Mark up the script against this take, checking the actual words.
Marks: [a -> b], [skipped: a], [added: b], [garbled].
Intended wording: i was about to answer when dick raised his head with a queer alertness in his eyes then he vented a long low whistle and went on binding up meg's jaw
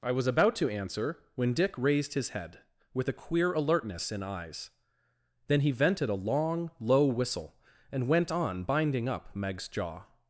i was about to answer when dick raised his head with a queer alertness in [skipped: his] eyes then he vented a long low whistle and went on binding up meg's jaw